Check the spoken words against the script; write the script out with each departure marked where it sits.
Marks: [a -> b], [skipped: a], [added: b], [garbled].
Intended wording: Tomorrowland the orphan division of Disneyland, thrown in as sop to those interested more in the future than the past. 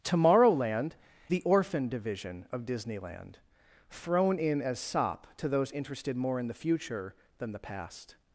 Tomorrowland the orphan division of Disneyland, thrown in as sop to those interested more in the future than the past.